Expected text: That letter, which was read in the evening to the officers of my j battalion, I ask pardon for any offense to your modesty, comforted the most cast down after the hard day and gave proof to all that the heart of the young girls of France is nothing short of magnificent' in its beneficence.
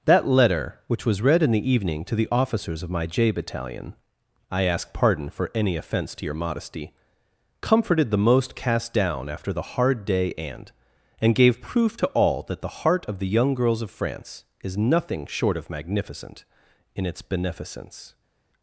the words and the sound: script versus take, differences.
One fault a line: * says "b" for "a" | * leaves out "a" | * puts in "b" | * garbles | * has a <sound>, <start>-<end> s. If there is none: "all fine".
* puts in "and"